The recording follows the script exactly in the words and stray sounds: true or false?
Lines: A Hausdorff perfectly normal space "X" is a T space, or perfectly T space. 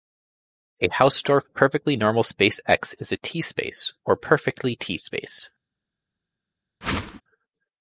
false